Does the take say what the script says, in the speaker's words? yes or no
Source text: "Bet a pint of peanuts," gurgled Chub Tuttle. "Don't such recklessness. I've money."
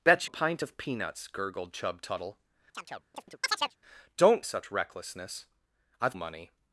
yes